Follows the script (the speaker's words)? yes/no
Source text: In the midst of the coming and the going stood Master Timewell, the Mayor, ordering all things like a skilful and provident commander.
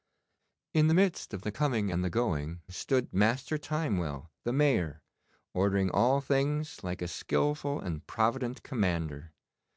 yes